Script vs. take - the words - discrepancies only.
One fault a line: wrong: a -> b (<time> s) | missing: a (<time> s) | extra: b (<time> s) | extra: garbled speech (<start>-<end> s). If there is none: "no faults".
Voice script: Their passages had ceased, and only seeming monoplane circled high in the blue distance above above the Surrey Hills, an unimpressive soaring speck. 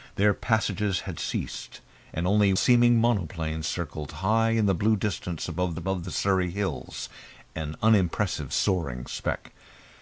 no faults